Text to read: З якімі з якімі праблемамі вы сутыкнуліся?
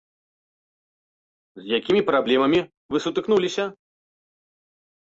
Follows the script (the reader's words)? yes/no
no